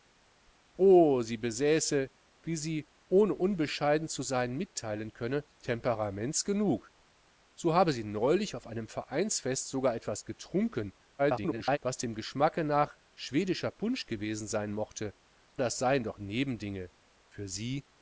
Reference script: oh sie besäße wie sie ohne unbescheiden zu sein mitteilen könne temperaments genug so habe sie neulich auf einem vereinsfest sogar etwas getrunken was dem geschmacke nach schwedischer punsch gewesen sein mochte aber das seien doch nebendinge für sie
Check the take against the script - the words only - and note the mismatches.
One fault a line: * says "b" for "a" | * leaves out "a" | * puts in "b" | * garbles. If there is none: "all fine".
* garbles
* leaves out "aber"